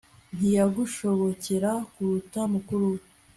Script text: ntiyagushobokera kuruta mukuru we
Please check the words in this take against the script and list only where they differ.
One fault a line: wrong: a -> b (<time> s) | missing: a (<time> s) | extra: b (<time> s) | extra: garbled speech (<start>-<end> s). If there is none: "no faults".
no faults